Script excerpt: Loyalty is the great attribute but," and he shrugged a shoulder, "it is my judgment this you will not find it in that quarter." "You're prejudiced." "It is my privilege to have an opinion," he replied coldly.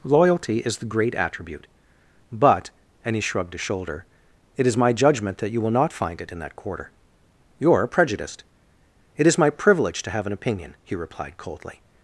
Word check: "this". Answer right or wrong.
wrong